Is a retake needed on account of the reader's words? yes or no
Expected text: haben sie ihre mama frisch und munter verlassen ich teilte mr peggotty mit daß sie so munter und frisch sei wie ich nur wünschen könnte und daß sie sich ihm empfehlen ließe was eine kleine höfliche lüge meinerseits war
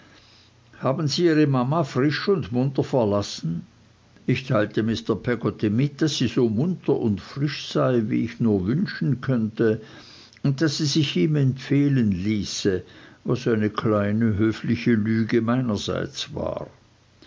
no